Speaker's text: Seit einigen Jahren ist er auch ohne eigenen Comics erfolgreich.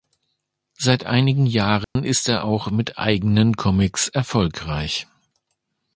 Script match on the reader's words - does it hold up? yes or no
no